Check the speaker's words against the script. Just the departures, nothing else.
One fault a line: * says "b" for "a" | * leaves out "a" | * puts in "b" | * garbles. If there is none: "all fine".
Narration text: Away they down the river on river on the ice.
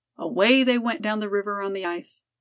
* puts in "went"
* leaves out "river on"